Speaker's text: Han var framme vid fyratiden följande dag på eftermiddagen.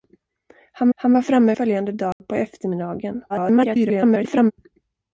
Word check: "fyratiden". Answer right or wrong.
wrong